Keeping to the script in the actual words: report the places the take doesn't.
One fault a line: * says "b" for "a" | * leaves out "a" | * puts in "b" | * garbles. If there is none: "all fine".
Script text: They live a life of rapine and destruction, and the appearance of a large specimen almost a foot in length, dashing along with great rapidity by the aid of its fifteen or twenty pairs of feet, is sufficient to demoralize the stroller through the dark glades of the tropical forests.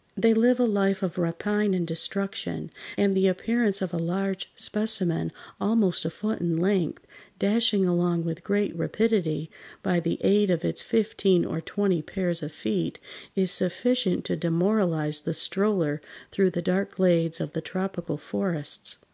all fine